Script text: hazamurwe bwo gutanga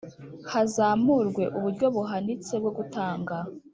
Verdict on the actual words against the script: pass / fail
fail